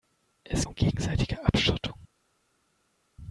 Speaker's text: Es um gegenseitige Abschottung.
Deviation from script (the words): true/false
false